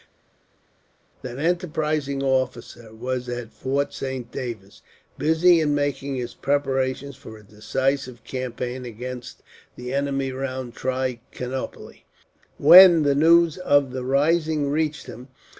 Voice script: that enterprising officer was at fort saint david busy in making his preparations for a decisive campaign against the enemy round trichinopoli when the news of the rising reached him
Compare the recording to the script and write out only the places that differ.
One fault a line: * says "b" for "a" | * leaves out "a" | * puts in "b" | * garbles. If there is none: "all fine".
all fine